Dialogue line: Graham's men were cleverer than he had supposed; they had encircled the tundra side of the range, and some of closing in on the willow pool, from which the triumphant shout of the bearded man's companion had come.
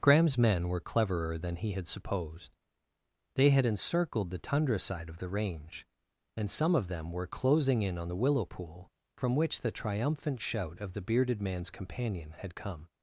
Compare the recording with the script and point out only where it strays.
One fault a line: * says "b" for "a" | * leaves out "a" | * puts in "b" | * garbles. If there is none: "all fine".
* puts in "them were"